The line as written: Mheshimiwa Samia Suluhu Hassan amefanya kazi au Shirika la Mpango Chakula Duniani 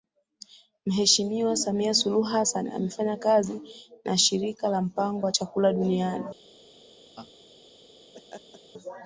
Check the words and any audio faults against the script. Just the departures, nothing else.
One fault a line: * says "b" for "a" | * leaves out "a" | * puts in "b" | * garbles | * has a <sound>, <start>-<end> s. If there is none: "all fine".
* says "na" for "au"
* puts in "wa"
* has a laugh, 7.2-7.3 s
* has a laugh, 8.1-8.6 s